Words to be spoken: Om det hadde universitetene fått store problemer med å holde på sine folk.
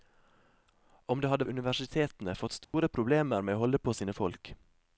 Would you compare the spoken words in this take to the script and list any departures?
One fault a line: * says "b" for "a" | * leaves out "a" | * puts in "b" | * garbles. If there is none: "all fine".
all fine